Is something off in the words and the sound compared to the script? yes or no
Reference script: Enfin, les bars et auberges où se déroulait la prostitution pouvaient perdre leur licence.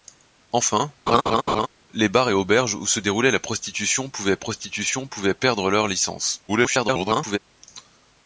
yes